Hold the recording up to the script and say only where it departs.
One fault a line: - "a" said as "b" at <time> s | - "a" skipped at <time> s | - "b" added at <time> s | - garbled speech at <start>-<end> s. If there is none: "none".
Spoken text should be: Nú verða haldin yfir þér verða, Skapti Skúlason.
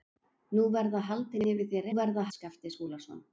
none